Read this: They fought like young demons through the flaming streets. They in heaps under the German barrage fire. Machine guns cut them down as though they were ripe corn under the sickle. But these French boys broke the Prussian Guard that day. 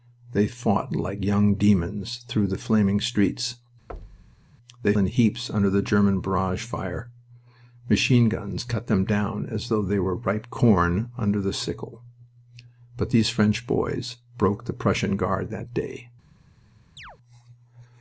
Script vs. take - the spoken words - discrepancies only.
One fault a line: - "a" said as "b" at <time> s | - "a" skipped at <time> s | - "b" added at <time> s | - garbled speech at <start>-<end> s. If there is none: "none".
none